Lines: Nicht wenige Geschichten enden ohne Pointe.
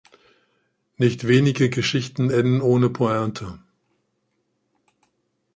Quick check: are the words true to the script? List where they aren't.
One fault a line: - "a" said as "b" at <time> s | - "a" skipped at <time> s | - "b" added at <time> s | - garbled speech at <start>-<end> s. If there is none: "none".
none